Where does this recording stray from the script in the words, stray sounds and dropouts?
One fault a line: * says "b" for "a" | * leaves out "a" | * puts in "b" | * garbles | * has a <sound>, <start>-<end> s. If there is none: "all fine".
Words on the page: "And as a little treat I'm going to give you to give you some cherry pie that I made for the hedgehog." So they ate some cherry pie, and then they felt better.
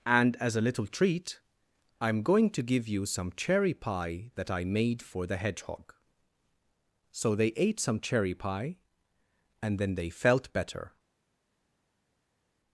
* leaves out "to give you"